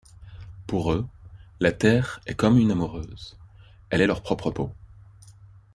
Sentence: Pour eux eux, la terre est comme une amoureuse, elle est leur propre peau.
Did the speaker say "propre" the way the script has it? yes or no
yes